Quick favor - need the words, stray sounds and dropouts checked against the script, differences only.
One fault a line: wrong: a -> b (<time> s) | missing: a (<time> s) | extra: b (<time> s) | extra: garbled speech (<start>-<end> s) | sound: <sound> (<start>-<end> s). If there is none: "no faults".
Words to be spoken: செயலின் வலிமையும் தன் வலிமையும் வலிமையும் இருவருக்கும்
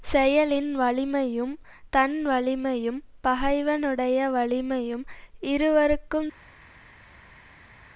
extra: பகைவனுடைய (3.2 s)